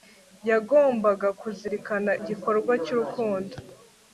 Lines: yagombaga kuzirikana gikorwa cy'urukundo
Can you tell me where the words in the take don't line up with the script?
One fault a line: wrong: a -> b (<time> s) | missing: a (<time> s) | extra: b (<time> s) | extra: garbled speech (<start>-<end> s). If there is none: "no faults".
no faults